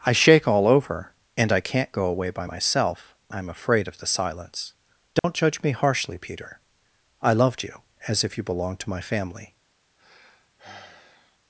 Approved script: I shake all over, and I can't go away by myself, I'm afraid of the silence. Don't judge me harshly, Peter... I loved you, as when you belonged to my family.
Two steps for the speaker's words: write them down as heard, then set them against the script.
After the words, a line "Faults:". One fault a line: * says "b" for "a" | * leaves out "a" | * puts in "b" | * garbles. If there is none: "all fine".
I shake all over, and I can't go away by myself, I'm afraid of the silence. Don't judge me harshly, Peter... I loved you, as if you belonged to my family.
Faults:
* says "if" for "when"